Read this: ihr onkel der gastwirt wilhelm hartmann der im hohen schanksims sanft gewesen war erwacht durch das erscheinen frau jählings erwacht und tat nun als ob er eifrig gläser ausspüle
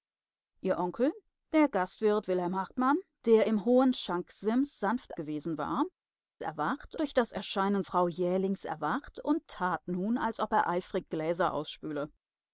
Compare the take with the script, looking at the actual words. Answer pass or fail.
pass